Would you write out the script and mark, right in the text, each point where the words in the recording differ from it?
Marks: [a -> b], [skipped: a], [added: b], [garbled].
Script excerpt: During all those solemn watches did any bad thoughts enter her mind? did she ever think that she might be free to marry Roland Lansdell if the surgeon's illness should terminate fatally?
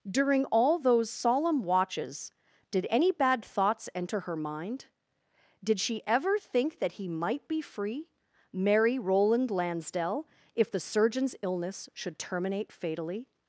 During all those solemn watches did any bad thoughts enter her mind? did she ever think that [she -> he] might be free [skipped: to] marry Roland Lansdell if the surgeon's illness should terminate fatally?